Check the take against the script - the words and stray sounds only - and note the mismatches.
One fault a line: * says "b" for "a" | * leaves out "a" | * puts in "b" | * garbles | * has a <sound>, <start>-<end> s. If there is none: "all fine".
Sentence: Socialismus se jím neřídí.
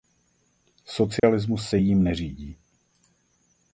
* has a dropout, 1.2-1.2 s